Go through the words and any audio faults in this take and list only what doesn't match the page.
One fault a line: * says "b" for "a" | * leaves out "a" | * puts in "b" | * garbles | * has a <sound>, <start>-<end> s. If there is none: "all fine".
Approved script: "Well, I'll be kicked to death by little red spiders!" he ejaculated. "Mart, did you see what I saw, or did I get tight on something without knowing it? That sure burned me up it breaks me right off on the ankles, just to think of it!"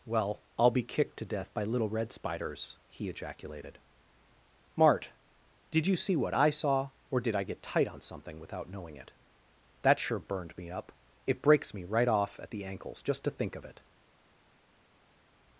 * says "at" for "on"